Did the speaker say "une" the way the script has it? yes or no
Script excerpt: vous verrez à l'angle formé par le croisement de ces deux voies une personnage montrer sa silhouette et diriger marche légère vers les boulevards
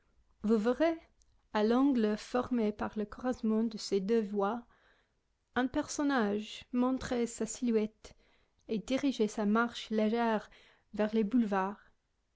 no